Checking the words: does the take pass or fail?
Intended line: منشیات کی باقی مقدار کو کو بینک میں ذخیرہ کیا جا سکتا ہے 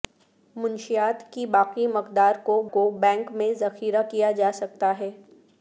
pass